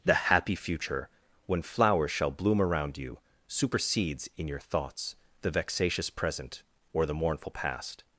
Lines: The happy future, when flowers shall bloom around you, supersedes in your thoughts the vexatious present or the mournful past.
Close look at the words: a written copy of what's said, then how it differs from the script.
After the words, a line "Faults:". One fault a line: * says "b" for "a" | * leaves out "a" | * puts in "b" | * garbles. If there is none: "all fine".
The happy future, when flowers shall bloom around you, supersedes in your thoughts the vexatious present or the mournful past.
Faults:
all fine